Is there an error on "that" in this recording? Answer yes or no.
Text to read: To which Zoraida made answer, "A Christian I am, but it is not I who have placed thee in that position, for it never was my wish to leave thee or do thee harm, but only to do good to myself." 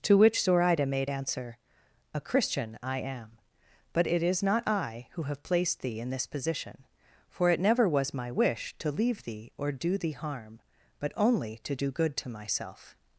yes